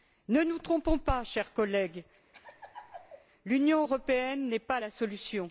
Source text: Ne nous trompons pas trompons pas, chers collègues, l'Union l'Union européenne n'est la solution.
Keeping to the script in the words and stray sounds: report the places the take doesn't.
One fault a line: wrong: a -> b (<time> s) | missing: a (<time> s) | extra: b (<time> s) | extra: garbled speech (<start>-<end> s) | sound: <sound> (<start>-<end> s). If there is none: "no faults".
missing: trompons pas (1.2 s)
sound: laugh (2.3-3.3 s)
missing: l'Union (3.8 s)
extra: pas (4.6 s)